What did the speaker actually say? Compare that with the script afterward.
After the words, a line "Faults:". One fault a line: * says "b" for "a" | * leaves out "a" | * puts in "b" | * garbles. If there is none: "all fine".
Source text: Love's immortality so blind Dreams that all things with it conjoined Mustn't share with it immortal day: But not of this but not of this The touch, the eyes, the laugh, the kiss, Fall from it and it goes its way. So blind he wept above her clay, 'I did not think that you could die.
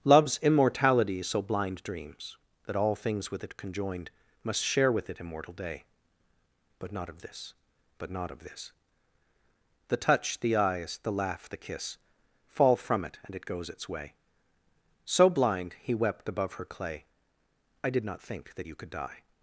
Love's immortality so blind Dreams that all things with it conjoined Must share with it immortal day: But not of this but not of this The touch, the eyes, the laugh, the kiss, Fall from it and it goes its way. So blind he wept above her clay, 'I did not think that you could die.
Faults:
* says "Must" for "Mustn't"